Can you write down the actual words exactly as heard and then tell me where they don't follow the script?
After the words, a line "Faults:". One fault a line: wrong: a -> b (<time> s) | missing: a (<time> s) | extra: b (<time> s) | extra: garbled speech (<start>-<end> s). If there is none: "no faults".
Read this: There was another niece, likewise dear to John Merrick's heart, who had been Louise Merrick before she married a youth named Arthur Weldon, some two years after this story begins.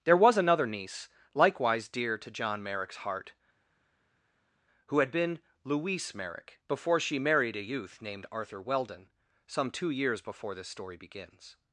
There was another niece, likewise dear to John Merrick's heart, who had been Louise Merrick before she married a youth named Arthur Weldon, some two years before this story begins.
Faults:
wrong: after -> before (10.2 s)